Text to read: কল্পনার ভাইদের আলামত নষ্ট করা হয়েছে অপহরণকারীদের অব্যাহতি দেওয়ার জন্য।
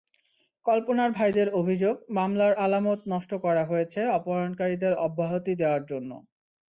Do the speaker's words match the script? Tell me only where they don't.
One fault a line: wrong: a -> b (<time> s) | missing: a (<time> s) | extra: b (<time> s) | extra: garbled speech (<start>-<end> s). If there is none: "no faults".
extra: অভিযোগ মামলার (1.5 s)